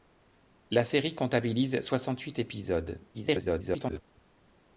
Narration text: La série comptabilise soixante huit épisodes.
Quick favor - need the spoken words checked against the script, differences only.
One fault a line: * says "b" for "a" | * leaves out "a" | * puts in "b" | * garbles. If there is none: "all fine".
* garbles